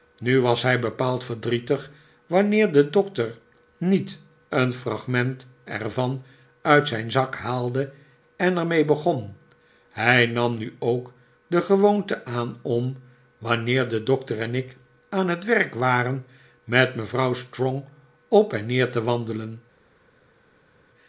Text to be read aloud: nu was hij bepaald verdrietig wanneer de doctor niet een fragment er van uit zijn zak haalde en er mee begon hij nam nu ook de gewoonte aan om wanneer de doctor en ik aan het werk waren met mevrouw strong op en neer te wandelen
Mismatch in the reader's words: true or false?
false